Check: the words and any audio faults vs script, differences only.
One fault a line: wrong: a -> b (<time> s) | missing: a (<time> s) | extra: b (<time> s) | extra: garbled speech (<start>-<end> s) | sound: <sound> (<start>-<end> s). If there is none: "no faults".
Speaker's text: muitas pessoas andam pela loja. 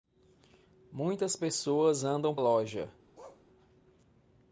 missing: pela (2.4 s)
sound: bark (3.1-3.4 s)